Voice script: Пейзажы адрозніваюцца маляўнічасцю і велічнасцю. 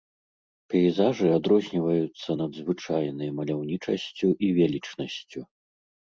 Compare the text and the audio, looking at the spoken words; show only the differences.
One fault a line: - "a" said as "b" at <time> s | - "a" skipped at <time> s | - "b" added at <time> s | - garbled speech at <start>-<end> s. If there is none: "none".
- "надзвычайнай" added at 2.4 s